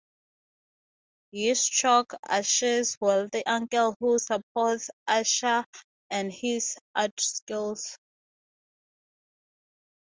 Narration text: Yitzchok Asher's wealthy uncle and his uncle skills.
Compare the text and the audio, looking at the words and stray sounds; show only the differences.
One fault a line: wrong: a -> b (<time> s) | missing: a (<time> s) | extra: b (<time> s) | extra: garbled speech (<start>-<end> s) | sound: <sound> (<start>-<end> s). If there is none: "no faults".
extra: who supports Asher (4.0 s)
wrong: uncle -> art (7.0 s)